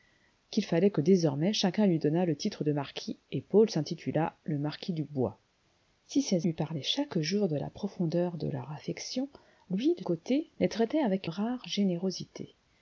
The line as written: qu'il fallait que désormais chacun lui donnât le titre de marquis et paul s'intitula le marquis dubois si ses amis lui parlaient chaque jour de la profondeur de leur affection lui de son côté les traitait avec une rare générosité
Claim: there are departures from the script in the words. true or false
true